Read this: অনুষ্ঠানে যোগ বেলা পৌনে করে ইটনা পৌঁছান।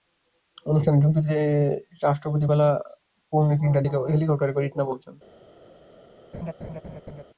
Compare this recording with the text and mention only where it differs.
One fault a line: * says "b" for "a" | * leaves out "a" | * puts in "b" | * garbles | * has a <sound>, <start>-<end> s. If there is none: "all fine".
* puts in "দিতে রাষ্ট্রপতি"
* puts in "তিনটার দিকে হেলিকপ্টারে"
* has a laugh, 6.3-7.2 s